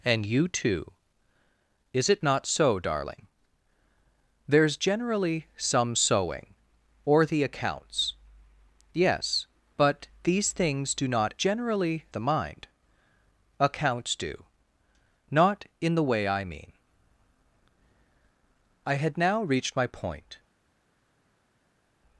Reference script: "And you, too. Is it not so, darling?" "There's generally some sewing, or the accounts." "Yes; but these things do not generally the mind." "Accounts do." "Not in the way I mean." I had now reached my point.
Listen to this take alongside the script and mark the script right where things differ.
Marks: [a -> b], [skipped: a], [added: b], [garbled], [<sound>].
"And you, too. Is it not so, darling?" "There's generally some sewing, or the accounts." "Yes; but these things do not generally the mind." "Accounts do." "Not in the way I mean." I had now reached my point.